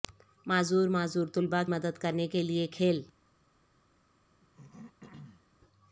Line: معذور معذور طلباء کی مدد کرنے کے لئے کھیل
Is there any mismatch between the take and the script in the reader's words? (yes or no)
yes